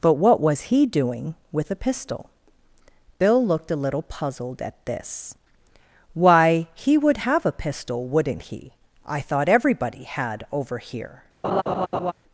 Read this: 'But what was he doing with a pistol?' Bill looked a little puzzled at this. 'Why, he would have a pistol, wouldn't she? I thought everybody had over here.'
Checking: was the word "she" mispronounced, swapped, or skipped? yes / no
yes